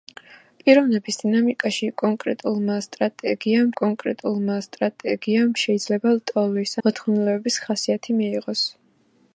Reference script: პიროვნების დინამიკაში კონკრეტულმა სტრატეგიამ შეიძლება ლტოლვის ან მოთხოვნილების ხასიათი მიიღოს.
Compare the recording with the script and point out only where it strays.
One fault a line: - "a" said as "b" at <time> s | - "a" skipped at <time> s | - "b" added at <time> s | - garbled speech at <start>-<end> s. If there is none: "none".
- "კონკრეტულმა სტრატეგიამ" added at 3.8 s
- "ან" skipped at 6.8 s